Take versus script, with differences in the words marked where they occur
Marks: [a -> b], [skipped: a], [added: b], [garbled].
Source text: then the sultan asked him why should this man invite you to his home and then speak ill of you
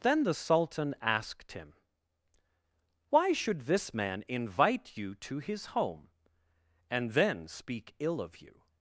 then the sultan asked him why should this man invite you to his home and then speak ill of you